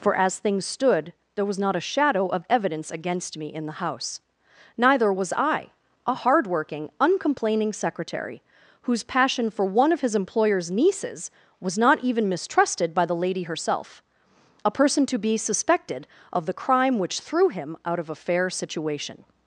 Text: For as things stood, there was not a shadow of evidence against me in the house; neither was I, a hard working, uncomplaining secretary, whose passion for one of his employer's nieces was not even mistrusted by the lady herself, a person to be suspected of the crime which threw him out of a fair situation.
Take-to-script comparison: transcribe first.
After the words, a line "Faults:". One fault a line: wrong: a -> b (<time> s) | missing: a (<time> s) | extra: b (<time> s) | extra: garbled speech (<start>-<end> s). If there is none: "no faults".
For as things stood, there was not a shadow of evidence against me in the house; neither was I, a hard working, uncomplaining secretary, whose passion for one of his employer's nieces was not even mistrusted by the lady herself, a person to be suspected of the crime which threw him out of a fair situation.
Faults:
no faults